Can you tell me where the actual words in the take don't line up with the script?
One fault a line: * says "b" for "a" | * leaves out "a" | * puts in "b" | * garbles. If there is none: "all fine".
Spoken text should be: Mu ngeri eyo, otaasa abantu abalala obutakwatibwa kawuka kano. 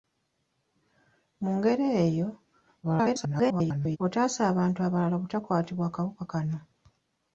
* garbles